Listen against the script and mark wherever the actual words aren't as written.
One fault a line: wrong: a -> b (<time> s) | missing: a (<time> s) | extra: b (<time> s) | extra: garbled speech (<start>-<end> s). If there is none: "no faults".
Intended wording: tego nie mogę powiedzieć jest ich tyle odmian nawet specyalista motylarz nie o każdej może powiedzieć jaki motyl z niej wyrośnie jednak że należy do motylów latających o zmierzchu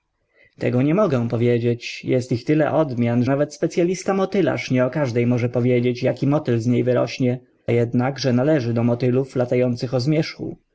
no faults